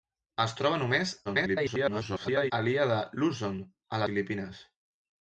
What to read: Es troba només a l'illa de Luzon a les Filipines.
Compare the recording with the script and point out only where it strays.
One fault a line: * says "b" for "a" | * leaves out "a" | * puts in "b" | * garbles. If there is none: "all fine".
* garbles
* leaves out "les"